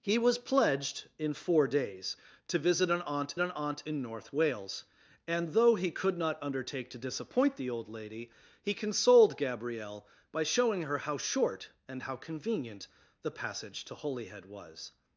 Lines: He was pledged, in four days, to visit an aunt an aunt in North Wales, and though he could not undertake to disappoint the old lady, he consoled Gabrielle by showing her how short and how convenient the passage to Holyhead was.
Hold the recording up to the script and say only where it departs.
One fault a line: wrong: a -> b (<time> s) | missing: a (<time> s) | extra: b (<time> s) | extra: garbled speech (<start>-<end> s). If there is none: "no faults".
no faults